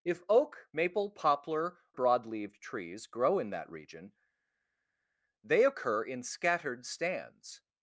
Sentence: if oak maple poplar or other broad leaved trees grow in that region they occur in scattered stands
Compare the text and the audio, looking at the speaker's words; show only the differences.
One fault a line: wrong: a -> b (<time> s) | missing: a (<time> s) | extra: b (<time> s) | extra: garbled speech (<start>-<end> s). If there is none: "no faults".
missing: or other (1.8 s)